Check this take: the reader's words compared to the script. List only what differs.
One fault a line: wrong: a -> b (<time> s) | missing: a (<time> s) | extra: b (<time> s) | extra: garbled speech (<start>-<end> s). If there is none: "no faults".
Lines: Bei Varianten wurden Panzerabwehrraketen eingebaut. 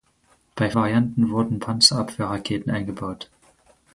no faults